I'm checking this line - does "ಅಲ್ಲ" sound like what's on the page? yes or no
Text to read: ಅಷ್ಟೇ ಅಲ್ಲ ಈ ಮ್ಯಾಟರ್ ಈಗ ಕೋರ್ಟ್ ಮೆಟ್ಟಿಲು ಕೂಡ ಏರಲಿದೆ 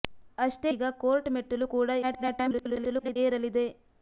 no